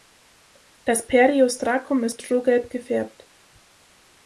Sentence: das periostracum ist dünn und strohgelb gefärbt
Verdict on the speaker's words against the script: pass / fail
fail